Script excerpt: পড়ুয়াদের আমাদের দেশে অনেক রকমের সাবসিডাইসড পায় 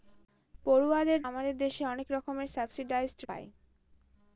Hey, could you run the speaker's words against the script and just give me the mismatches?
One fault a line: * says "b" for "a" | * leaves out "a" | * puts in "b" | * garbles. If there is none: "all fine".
all fine